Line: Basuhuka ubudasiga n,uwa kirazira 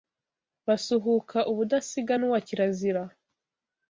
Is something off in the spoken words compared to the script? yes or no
no